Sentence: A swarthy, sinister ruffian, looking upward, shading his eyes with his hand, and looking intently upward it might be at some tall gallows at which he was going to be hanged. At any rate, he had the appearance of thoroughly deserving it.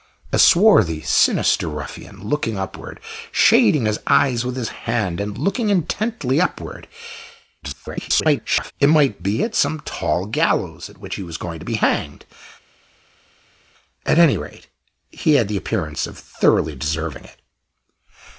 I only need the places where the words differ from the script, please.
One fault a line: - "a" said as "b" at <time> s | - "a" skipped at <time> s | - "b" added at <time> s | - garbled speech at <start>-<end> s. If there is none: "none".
- garbled speech at 7.6-8.7 s